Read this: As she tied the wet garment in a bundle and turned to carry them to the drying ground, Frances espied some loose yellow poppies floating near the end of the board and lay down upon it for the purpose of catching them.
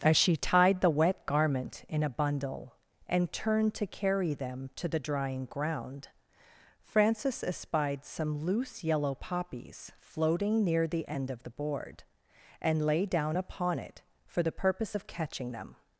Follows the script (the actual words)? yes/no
yes